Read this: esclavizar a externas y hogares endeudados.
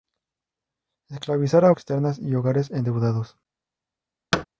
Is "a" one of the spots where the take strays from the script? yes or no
no